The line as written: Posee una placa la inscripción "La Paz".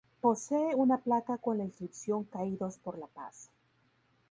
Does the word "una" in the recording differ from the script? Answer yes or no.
no